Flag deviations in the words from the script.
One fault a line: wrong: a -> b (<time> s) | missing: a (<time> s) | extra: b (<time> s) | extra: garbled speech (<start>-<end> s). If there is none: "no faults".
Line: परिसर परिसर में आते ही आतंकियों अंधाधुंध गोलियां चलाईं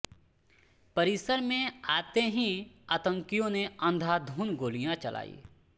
missing: परिसर (1.4 s)
extra: ने (3.5 s)